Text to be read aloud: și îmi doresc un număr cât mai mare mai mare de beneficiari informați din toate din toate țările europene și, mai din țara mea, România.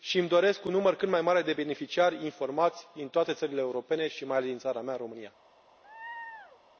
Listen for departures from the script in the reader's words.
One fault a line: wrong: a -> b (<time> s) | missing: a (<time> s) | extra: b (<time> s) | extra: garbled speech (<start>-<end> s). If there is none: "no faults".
missing: mai mare (1.4 s)
missing: din toate (3.3 s)
extra: ales (4.4 s)